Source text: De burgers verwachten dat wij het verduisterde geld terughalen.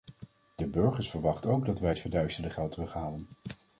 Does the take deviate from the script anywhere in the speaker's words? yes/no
yes